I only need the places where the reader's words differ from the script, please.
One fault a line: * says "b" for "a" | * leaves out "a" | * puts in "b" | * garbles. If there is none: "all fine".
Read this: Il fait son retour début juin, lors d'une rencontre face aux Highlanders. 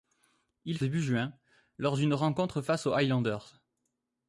* leaves out "fait son retour"